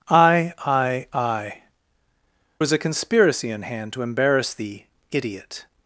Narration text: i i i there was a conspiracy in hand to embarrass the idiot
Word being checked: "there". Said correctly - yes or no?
no